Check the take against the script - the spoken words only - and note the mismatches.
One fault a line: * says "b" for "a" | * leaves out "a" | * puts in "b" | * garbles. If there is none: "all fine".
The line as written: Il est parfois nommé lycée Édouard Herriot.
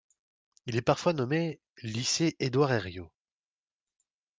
all fine